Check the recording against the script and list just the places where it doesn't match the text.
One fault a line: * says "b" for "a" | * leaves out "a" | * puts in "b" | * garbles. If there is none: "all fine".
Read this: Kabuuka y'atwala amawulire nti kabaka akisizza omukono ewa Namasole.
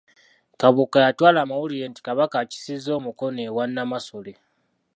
all fine